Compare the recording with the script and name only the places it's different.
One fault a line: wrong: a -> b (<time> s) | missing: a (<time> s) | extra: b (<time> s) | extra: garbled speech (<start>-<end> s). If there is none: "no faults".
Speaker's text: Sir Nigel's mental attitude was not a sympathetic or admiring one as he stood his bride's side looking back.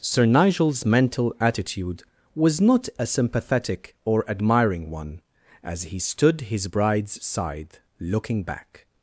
no faults